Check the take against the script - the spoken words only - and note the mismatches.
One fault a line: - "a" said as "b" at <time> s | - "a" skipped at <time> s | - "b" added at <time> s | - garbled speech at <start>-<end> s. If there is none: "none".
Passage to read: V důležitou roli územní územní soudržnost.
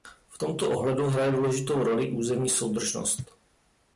- "tomto ohledu hraje" added at 0.4 s
- "územní" skipped at 2.5 s